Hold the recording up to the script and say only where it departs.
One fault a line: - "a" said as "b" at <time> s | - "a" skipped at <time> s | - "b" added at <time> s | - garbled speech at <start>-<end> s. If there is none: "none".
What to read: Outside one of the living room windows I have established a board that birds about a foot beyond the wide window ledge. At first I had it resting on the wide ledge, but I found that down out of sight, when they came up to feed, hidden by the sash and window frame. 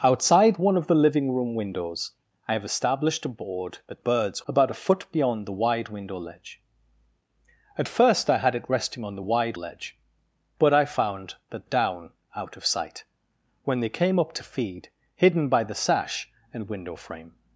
none